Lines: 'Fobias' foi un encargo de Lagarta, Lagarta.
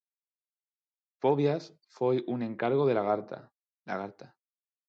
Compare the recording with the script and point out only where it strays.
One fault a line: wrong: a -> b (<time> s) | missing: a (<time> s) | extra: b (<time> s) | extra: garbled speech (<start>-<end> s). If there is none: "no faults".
no faults